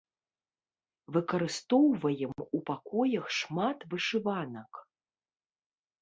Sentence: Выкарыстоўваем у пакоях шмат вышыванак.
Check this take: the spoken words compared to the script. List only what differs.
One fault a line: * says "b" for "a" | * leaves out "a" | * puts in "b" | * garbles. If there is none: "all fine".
all fine